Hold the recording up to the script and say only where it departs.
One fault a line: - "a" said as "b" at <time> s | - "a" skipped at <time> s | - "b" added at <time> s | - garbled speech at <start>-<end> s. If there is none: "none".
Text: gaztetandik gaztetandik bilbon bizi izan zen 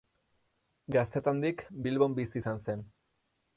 - "gaztetandik" skipped at 1.6 s